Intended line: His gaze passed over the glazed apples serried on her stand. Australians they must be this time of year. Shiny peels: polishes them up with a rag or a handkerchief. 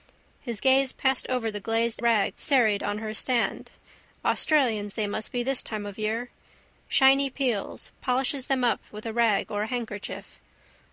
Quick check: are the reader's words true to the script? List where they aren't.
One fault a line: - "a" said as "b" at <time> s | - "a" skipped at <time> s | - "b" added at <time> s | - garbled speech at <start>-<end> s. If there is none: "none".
- "apples" said as "rag" at 2.0 s